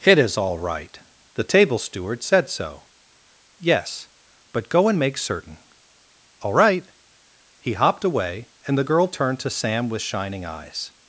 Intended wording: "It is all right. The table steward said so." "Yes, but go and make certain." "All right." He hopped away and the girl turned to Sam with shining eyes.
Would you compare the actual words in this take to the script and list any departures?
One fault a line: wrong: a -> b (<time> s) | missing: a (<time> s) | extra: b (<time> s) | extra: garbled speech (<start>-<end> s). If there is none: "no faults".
no faults